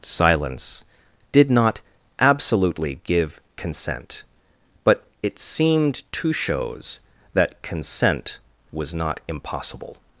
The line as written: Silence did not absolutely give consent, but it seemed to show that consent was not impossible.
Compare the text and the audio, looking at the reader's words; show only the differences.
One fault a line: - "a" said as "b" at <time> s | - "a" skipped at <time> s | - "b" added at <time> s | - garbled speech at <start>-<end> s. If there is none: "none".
- "show" said as "shows" at 6.3 s